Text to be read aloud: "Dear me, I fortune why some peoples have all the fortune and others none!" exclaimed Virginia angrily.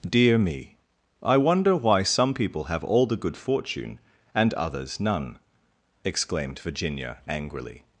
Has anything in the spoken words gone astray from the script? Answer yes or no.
yes